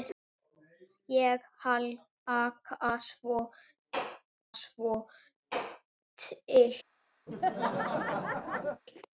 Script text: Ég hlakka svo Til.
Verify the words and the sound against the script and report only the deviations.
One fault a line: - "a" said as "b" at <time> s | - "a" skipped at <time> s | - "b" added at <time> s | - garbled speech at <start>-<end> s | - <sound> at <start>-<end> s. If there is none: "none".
- "svo" added at 4.6 s
- laugh at 7.3-8.8 s